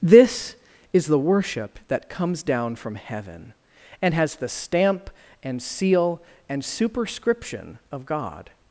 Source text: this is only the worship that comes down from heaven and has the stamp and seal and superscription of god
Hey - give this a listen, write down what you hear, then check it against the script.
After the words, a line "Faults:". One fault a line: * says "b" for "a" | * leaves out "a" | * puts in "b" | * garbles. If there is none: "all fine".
this is the worship that comes down from heaven and has the stamp and seal and superscription of god
Faults:
* leaves out "only"